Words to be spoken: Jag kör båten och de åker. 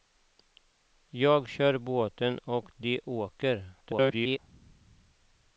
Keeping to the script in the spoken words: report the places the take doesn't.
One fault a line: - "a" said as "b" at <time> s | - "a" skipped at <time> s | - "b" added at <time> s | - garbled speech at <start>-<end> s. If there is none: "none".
- garbled speech at 3.8-4.4 s